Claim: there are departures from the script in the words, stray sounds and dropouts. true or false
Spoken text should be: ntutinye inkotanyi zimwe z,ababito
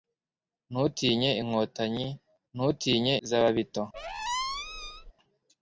true